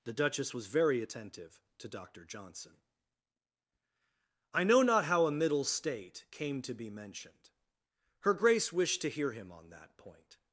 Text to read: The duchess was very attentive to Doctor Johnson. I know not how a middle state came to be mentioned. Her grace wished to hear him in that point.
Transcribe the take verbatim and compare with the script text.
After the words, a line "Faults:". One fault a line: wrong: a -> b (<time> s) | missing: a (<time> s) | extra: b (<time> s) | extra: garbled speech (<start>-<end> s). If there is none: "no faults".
The duchess was very attentive to Doctor Johnson. I know not how a middle state came to be mentioned. Her grace wished to hear him on that point.
Faults:
wrong: in -> on (9.5 s)